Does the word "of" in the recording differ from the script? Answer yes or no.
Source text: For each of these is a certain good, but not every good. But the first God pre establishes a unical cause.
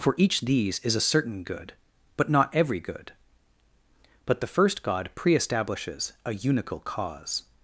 yes